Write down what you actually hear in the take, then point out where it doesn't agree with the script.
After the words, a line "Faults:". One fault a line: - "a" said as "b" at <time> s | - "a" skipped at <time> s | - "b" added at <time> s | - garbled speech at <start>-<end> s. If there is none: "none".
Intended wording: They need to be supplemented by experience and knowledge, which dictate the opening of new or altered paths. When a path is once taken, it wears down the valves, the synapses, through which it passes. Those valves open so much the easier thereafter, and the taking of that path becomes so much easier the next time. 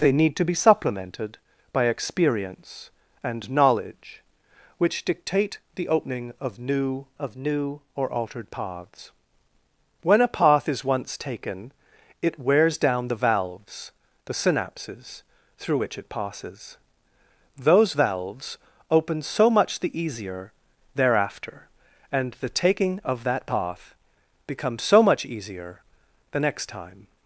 They need to be supplemented by experience and knowledge, which dictate the opening of new of new or altered paths. When a path is once taken, it wears down the valves, the synapses, through which it passes. Those valves open so much the easier thereafter, and the taking of that path becomes so much easier the next time.
Faults:
- "of new" added at 7.2 s